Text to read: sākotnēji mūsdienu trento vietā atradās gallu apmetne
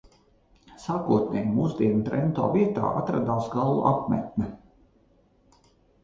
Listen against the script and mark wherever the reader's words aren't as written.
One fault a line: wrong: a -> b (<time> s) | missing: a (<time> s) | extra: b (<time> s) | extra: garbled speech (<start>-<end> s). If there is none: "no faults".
no faults